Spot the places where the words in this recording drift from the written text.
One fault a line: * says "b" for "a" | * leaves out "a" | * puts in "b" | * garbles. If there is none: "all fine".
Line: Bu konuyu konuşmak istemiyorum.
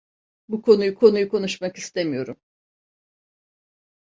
* puts in "konuyu"